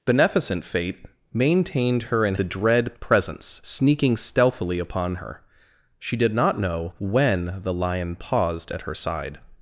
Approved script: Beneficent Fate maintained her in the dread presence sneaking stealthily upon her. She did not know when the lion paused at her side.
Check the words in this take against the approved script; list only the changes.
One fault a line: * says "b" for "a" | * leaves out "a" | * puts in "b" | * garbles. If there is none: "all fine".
all fine